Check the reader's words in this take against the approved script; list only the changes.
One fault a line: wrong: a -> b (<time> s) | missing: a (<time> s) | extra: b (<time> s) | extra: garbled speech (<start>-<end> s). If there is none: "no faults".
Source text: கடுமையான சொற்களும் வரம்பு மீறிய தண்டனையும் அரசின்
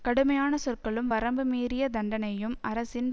no faults